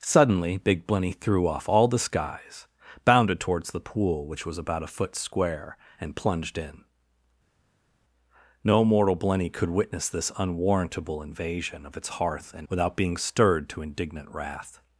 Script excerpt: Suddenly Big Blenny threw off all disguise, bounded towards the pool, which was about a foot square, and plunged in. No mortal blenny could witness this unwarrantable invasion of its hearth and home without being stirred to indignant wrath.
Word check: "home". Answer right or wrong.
wrong